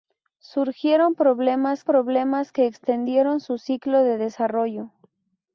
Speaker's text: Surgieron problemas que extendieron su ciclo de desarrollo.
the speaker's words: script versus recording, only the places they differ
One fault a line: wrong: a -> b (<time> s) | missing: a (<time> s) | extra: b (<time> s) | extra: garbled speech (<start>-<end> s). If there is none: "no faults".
extra: problemas (1.8 s)